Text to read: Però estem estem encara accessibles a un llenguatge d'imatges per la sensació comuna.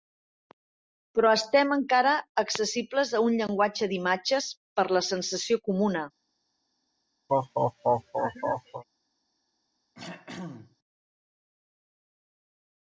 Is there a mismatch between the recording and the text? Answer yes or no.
yes